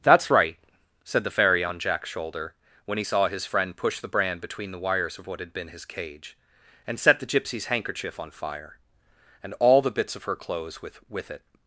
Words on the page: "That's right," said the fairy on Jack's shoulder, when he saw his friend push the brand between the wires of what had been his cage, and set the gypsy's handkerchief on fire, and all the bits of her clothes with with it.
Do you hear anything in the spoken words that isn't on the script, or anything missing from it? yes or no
no